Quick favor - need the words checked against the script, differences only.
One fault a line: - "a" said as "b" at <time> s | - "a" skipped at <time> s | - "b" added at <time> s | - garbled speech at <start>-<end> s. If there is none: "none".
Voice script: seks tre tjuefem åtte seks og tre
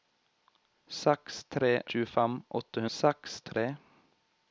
none